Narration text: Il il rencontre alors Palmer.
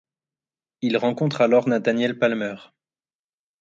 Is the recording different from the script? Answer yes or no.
yes